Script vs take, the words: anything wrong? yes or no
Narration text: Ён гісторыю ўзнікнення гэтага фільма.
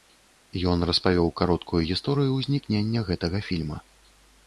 yes